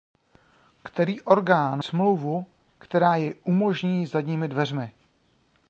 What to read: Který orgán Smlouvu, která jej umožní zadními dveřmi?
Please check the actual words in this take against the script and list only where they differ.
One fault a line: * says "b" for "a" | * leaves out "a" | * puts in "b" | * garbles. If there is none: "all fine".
all fine